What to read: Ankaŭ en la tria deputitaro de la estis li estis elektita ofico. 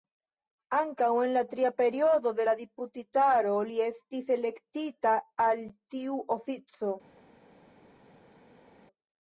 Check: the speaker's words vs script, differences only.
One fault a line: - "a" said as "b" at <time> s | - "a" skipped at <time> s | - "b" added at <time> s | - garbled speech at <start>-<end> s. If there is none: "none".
- "deputitaro" said as "periodo" at 1.8 s
- "estis" said as "deputitaro" at 2.6 s
- "al tiu" added at 5.5 s